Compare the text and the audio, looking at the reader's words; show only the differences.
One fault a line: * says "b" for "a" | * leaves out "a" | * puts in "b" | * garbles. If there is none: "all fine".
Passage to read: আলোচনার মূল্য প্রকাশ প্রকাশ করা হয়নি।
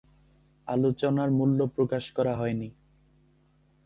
* leaves out "প্রকাশ"